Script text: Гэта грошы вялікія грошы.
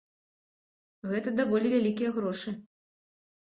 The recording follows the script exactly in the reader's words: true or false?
false